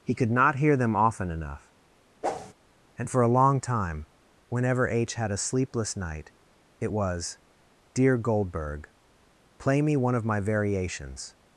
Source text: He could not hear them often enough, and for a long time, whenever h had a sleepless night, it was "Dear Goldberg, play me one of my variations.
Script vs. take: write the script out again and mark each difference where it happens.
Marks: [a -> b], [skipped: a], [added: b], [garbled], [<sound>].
He could not hear them often enough, [whoosh] and for a long time, whenever h had a sleepless night, it was "Dear Goldberg, play me one of my variations.